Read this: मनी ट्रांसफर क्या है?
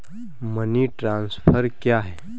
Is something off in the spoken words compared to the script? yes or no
no